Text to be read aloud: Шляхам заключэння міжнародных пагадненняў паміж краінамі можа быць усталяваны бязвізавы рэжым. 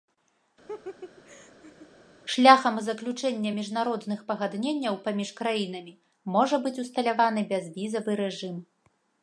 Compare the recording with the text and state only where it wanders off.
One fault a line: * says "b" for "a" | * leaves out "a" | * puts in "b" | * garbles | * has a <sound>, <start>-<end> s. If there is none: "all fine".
* has a laugh, 0.7-1.9 s